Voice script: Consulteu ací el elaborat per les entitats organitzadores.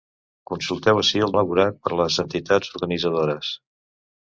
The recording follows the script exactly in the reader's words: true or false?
true